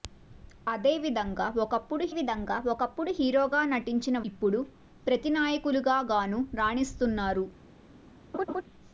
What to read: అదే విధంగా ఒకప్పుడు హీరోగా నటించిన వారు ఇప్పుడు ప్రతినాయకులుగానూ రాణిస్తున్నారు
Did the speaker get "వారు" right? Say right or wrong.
wrong